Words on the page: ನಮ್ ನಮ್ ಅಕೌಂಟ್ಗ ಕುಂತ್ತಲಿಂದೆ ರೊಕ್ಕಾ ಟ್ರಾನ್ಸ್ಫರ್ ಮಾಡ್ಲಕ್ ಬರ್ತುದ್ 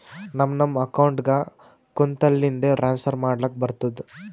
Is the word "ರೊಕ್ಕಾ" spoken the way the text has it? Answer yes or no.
no